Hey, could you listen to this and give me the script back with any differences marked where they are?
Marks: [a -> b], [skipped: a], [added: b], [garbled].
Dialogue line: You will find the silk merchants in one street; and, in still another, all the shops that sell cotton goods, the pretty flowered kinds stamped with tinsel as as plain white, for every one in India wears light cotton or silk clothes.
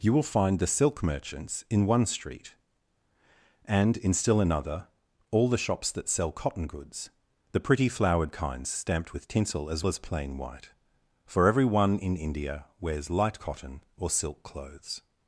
You will find the silk merchants in one street; and, in still another, all the shops that sell cotton goods, the pretty flowered kinds stamped with tinsel as as plain white, for every one in India wears light cotton or silk clothes.